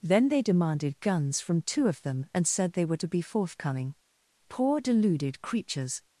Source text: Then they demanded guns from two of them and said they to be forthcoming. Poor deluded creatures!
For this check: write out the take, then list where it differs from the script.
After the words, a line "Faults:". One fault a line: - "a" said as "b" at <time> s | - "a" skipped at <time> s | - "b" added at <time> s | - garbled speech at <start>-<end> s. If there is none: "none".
Then they demanded guns from two of them and said they were to be forthcoming. Poor deluded creatures!
Faults:
- "were" added at 2.9 s